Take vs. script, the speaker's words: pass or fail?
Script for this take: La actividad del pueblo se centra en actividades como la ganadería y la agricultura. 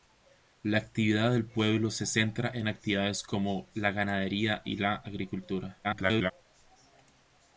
fail